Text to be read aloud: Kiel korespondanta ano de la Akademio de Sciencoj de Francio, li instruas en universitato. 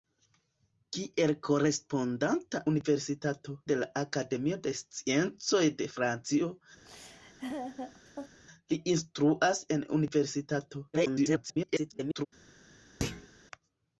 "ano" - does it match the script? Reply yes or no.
no